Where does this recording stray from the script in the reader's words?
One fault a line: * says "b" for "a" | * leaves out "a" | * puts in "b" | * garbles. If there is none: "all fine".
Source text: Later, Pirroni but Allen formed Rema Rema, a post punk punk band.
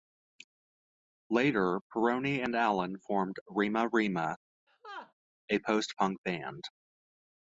* says "and" for "but"
* leaves out "punk"